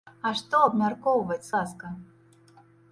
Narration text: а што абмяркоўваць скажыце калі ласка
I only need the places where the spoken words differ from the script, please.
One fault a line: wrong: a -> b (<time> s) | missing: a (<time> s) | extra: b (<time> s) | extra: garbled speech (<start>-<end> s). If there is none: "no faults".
missing: скажыце калі (1.5 s)